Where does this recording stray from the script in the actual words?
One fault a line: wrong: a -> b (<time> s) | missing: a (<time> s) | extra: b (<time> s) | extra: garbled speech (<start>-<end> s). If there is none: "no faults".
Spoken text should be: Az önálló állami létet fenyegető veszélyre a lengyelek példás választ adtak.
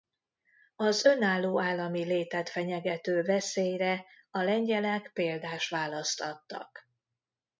no faults